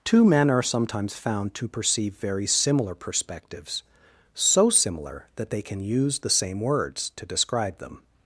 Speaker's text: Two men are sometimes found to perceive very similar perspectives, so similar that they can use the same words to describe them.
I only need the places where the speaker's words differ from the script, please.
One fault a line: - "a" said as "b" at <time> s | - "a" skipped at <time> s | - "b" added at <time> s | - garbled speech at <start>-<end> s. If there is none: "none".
none